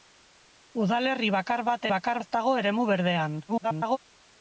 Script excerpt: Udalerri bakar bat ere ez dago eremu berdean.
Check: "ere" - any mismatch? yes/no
yes